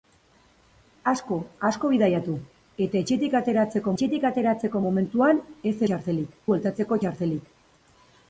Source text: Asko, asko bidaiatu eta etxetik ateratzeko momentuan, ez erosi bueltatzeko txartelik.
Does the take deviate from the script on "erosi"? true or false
true